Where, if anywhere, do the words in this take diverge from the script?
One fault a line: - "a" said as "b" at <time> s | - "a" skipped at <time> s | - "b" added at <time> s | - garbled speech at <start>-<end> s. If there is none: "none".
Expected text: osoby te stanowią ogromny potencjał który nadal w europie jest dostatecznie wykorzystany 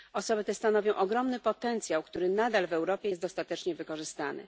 none